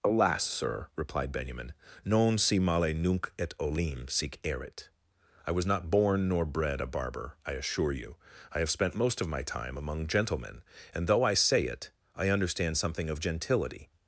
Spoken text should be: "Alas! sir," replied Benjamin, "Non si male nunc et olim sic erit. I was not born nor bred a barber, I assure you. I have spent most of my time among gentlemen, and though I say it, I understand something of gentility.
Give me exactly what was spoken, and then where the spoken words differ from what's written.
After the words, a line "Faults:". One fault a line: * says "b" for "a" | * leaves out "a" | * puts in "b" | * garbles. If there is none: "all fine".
"Alas! sir," replied Benjamin, "Non si male nunc et olim sic erit. I was not born nor bred a barber, I assure you. I have spent most of my time among gentlemen, and though I say it, I understand something of gentility.
Faults:
all fine